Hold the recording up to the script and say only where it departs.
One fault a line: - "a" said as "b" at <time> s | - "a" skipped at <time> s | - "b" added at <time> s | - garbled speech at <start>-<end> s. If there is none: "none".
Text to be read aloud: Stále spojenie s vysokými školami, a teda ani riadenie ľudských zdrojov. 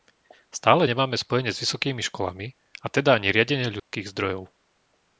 - "nemáme" added at 0.9 s